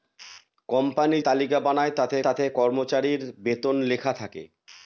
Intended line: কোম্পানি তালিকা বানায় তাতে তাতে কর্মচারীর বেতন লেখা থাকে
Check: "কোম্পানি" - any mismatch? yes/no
no